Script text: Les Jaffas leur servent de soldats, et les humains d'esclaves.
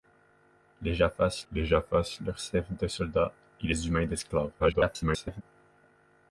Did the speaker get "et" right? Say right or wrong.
right